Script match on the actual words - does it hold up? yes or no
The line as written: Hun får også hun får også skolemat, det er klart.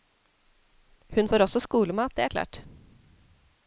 no